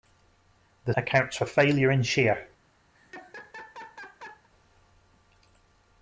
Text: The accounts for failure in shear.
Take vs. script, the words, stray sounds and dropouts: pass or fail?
fail